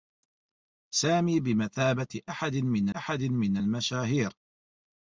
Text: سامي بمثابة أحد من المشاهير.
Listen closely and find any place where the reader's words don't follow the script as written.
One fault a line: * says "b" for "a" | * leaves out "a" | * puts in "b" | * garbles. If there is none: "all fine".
* puts in "أحد من"